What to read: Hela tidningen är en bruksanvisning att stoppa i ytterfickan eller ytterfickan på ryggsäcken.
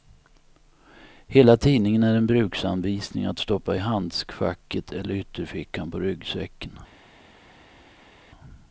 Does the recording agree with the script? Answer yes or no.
no